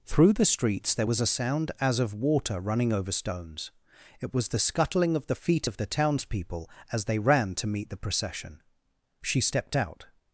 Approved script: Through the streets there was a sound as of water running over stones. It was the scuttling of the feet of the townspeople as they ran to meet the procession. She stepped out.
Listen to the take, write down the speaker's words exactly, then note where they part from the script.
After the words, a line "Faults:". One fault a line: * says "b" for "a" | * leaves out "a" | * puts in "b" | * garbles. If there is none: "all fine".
Through the streets there was a sound as of water running over stones. It was the scuttling of the feet of the townspeople as they ran to meet the procession. She stepped out.
Faults:
all fine